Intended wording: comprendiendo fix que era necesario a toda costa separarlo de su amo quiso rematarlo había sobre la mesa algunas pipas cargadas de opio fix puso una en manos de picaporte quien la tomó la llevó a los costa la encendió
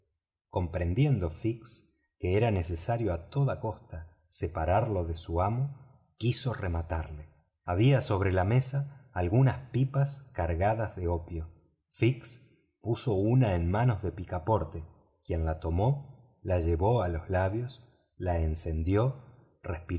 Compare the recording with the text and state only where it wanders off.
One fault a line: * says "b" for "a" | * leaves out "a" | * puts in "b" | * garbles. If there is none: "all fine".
* says "labios" for "costa"